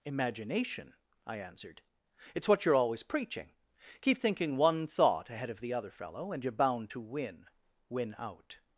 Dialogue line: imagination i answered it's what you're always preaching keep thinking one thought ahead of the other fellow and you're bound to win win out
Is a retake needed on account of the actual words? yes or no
no